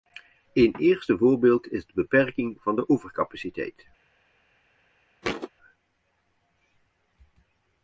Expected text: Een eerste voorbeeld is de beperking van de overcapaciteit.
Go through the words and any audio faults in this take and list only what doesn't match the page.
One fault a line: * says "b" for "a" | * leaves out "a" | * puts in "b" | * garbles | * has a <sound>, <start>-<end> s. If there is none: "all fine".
* has a thud, 5.2-5.5 s